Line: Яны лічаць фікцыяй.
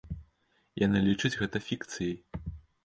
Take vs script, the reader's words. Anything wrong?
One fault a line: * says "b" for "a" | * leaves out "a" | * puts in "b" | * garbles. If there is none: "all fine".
* puts in "гэта"